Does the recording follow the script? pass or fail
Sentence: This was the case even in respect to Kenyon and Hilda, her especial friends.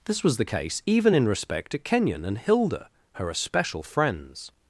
pass